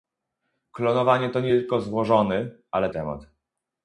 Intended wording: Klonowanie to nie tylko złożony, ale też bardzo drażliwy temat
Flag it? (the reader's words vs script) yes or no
yes